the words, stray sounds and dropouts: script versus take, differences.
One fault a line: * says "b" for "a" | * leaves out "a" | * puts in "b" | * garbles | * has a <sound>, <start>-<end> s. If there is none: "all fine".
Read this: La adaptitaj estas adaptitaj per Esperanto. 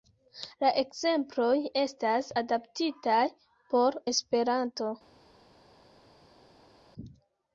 * says "ekzemploj" for "adaptitaj"
* says "por" for "per"